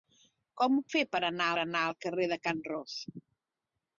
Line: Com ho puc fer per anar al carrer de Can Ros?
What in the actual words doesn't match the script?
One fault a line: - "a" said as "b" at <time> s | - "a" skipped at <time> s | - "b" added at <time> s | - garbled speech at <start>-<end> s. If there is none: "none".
- "puc" skipped at 0.8 s
- "anar" added at 1.6 s